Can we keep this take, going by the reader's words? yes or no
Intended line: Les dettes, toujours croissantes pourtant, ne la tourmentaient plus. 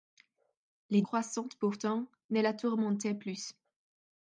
no